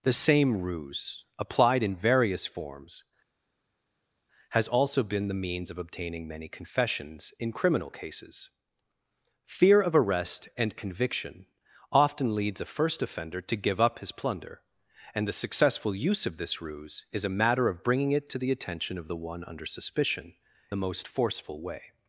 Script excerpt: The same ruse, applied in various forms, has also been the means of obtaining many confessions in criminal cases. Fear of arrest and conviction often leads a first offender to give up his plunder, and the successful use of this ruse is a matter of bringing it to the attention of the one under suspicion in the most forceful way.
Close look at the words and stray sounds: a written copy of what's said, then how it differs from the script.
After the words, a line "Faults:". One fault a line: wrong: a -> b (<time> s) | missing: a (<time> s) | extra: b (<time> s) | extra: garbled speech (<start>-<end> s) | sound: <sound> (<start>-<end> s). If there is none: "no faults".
The same ruse, applied in various forms, has also been the means of obtaining many confessions in criminal cases. Fear of arrest and conviction often leads a first offender to give up his plunder, and the successful use of this ruse is a matter of bringing it to the attention of the one under suspicion the most forceful way.
Faults:
missing: in (20.3 s)